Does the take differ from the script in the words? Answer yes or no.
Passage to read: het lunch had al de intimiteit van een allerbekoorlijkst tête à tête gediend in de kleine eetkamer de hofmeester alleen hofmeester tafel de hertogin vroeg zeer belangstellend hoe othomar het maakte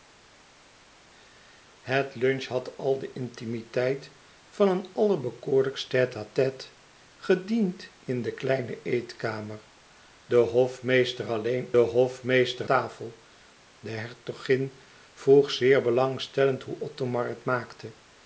no